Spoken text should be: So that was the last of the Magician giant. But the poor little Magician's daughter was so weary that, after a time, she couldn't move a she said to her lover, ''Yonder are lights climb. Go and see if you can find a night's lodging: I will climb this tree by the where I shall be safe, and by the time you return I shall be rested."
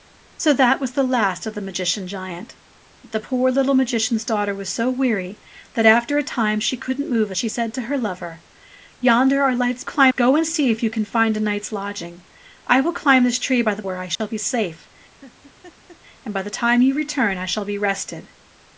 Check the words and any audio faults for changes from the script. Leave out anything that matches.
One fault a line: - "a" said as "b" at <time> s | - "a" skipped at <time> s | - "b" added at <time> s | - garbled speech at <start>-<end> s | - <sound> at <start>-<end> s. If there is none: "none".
- dropout at 14.2-14.2 s
- laugh at 15.2-16.0 s